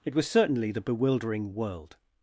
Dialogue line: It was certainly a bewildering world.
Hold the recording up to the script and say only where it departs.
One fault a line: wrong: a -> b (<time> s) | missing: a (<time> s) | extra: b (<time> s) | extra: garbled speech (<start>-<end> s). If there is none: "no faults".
wrong: a -> the (0.7 s)